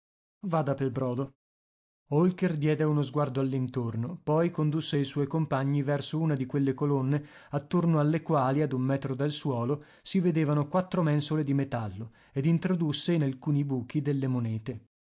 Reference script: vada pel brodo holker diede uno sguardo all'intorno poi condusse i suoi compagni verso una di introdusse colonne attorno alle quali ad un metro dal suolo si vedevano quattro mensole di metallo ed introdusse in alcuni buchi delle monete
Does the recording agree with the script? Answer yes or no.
no